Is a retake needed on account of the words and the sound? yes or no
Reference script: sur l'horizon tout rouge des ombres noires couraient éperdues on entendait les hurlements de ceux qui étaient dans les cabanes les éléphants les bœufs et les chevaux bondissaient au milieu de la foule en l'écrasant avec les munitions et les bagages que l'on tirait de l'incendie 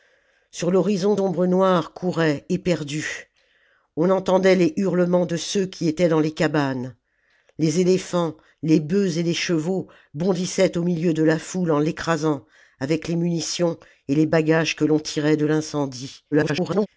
yes